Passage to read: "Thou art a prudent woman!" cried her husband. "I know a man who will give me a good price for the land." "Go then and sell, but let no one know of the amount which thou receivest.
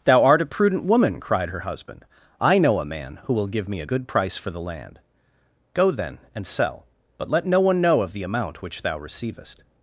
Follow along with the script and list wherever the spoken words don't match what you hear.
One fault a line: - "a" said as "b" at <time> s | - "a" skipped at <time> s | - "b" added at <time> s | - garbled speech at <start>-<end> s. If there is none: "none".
none